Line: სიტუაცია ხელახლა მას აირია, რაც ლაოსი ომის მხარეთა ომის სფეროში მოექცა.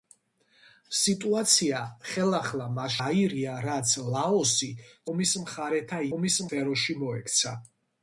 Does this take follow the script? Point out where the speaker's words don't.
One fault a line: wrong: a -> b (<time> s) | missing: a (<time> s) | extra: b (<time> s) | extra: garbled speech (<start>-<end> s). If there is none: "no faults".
no faults